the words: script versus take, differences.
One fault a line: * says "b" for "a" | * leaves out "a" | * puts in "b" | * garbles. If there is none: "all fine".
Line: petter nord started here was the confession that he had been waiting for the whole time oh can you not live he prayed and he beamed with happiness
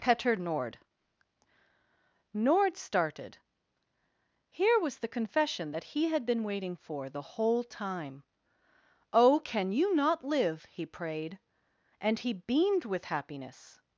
* puts in "nord"